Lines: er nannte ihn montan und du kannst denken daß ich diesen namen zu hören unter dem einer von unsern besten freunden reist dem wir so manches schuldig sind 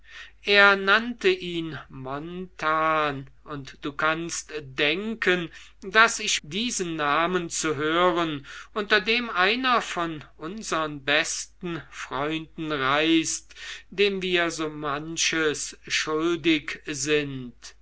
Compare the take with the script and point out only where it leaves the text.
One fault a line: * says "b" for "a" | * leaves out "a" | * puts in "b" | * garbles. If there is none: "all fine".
all fine